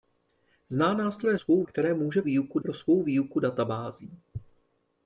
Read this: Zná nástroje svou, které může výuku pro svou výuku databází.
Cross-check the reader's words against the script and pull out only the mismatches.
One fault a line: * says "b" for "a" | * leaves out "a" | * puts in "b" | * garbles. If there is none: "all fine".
all fine